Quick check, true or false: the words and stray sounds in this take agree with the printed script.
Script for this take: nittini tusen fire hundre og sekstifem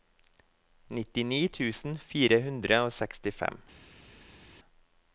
true